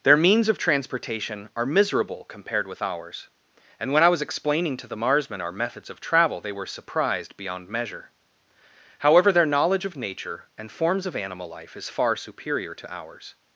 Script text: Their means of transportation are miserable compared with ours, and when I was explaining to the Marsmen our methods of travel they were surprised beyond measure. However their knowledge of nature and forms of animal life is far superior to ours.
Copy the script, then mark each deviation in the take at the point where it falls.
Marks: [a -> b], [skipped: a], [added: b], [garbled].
Their means of transportation are miserable compared with ours, and when I was explaining to the Marsmen our methods of travel they were surprised beyond measure. However their knowledge of nature and forms of animal life is far superior to ours.